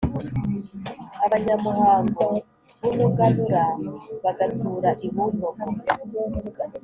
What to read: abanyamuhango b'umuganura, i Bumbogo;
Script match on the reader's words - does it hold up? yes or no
no